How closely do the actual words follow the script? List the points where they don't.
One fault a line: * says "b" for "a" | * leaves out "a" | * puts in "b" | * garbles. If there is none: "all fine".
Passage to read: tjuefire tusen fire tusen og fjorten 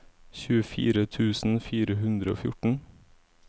* says "hundre" for "tusen"